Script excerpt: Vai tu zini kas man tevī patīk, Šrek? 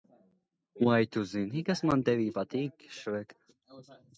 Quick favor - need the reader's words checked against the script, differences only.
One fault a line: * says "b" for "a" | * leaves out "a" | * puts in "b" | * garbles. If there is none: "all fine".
all fine